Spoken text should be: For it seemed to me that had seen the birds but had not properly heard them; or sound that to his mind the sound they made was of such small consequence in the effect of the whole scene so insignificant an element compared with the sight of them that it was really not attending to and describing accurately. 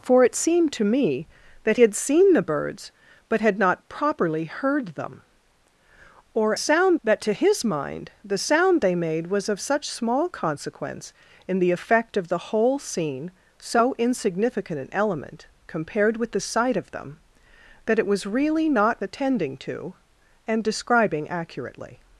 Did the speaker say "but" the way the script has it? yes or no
yes